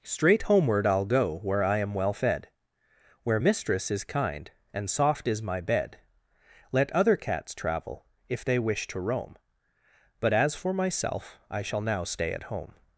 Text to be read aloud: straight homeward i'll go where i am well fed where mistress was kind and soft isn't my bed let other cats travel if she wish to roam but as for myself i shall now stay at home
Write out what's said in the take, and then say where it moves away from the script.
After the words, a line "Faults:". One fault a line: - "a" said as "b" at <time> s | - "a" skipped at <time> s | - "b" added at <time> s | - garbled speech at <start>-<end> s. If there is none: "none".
straight homeward i'll go where i am well fed where mistress is kind and soft is my bed let other cats travel if they wish to roam but as for myself i shall now stay at home
Faults:
- "was" said as "is" at 3.9 s
- "isn't" said as "is" at 5.3 s
- "she" said as "they" at 8.4 s